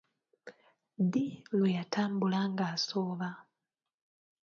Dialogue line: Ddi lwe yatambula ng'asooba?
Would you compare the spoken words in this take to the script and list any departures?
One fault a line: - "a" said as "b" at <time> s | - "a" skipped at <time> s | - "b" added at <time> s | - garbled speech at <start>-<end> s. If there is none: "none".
none